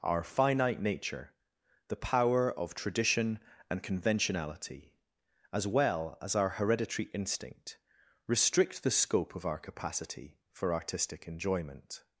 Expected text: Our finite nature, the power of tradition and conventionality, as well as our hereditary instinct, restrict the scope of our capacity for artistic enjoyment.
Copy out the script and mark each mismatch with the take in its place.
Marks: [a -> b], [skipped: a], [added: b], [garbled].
Our finite nature, the power of tradition and conventionality, as well as our hereditary instinct, restrict the scope of our capacity for artistic enjoyment.